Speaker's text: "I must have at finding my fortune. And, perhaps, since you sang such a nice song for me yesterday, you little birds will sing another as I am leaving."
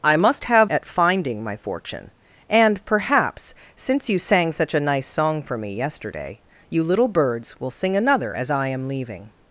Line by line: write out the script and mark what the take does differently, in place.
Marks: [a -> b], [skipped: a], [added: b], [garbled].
"I must have at finding my fortune. And, perhaps, since you sang such a nice song for me yesterday, you little birds will sing another as I am leaving."